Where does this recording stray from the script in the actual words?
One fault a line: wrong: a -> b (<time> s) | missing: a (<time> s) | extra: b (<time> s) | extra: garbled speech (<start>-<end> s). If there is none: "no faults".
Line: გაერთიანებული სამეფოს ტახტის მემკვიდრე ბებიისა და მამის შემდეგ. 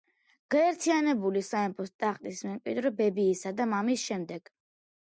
no faults